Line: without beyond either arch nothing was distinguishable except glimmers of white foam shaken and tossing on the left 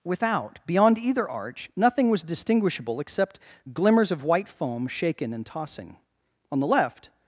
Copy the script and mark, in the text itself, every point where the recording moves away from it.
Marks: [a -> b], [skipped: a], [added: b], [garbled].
without beyond either arch nothing was distinguishable except glimmers of white foam shaken and tossing on the left